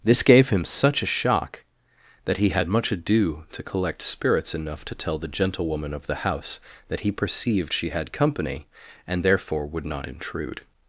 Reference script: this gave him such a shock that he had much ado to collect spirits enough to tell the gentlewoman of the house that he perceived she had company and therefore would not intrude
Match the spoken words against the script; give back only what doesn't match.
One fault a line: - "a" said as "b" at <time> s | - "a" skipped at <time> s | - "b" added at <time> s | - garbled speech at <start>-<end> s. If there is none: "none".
none